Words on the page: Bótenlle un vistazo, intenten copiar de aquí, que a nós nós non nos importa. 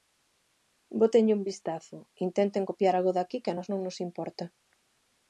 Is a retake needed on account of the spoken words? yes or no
yes